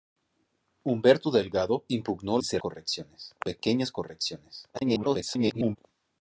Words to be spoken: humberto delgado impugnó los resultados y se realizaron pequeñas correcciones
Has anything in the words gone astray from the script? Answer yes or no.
yes